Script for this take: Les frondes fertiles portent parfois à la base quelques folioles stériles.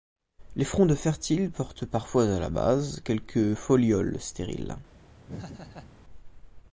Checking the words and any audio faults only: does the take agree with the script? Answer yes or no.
no